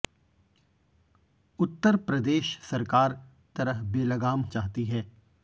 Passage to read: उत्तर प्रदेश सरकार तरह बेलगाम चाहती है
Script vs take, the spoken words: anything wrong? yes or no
no